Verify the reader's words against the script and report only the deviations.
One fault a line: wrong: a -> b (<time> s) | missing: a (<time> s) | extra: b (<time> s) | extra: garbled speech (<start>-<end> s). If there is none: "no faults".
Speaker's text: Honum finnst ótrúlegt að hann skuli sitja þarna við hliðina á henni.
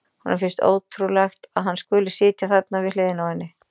no faults